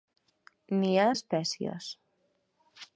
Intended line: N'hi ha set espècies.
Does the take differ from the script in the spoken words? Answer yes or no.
yes